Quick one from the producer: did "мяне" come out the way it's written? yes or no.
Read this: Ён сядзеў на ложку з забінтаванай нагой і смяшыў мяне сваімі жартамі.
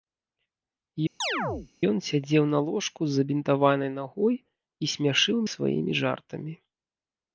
no